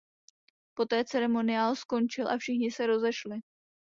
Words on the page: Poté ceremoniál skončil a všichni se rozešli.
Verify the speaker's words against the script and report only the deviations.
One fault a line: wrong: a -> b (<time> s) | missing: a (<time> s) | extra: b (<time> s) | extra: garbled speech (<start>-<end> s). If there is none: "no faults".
no faults